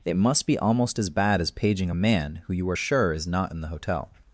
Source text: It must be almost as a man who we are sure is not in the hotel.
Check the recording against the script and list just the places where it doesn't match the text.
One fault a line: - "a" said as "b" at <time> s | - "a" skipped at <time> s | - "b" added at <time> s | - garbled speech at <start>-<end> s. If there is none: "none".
- "bad as paging" added at 1.1 s
- "we" said as "you" at 2.5 s